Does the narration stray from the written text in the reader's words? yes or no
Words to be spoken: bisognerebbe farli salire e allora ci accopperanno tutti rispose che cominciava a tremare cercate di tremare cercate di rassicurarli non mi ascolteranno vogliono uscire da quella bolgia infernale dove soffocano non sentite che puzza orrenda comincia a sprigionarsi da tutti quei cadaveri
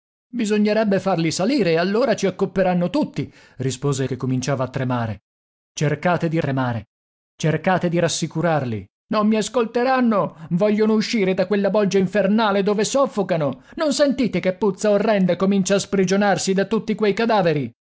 no